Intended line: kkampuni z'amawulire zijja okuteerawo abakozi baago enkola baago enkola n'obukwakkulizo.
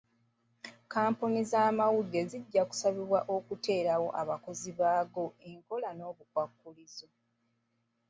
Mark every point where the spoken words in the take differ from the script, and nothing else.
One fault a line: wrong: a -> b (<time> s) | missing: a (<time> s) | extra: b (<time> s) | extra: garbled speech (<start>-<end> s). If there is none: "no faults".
extra: kusabibwa (2.7 s)
missing: baago enkola (5.9 s)